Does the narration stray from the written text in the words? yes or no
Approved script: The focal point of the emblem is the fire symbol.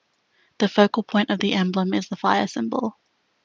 no